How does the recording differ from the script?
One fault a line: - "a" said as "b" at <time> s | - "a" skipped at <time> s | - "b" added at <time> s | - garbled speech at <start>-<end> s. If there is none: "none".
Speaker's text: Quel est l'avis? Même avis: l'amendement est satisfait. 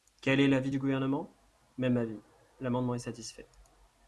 - "du Gouvernement" added at 0.7 s